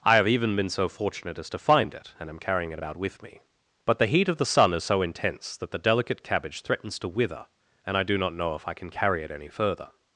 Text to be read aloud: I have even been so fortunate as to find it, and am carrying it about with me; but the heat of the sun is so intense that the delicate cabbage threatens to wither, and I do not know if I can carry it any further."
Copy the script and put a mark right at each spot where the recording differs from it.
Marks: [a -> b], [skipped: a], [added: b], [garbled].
I have even been so fortunate as to find it, and am carrying it about with me; but the heat of the sun is so intense that the delicate cabbage threatens to wither, and I do not know if I can carry it any further."